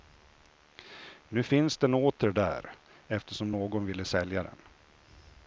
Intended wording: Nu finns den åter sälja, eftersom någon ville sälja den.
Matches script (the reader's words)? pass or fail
fail